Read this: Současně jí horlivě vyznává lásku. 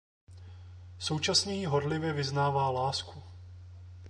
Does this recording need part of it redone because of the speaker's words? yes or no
no